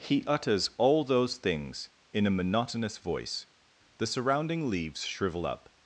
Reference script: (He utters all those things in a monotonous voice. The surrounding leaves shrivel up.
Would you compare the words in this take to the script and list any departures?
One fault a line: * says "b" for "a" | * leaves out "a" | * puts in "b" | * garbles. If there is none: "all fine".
all fine